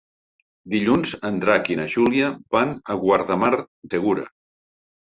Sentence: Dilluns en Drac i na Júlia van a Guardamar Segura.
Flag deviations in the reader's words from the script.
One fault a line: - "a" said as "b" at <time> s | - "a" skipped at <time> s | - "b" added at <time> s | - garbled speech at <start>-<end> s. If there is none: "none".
none